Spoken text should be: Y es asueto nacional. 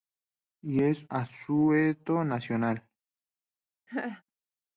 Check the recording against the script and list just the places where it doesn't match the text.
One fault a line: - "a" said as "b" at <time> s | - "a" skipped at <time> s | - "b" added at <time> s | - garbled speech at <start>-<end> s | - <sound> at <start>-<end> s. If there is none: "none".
- laugh at 3.9-4.2 s